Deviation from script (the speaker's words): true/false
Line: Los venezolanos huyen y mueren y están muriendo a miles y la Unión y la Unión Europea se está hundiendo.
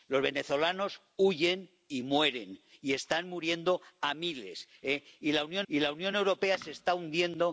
false